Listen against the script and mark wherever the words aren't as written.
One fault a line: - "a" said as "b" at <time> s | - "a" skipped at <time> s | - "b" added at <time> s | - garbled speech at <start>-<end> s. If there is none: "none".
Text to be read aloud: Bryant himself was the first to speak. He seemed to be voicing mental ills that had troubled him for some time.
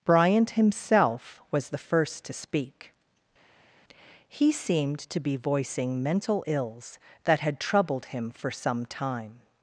none